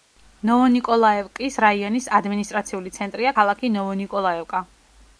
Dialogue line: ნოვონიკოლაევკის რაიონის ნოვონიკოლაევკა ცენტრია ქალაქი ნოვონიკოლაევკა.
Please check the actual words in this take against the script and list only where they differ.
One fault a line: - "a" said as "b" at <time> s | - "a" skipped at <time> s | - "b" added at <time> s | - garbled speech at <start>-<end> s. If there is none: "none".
- "ნოვონიკოლაევკა" said as "ადმინისტრაციული" at 2.2 s